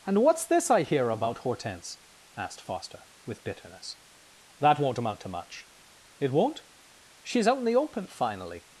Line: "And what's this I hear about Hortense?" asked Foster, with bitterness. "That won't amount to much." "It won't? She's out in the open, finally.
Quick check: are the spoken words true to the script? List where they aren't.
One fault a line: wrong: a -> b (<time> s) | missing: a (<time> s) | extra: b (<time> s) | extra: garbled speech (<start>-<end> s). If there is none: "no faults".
no faults